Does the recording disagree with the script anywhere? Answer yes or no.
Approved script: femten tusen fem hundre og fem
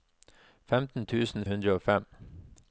yes